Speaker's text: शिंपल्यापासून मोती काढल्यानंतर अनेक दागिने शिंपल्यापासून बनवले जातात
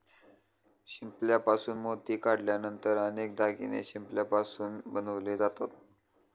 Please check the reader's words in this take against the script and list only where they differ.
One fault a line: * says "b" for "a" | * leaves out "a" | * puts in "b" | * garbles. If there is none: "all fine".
all fine